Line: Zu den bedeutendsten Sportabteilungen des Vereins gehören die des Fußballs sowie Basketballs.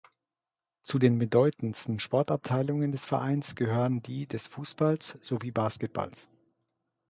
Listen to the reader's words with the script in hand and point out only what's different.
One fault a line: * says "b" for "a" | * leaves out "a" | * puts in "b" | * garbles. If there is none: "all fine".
all fine